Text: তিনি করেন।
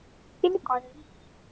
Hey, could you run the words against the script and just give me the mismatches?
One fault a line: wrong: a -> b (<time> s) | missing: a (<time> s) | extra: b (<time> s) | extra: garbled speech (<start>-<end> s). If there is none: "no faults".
no faults